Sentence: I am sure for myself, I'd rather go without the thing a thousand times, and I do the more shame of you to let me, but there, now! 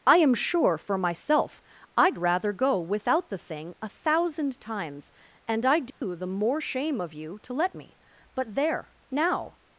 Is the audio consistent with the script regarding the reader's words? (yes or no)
yes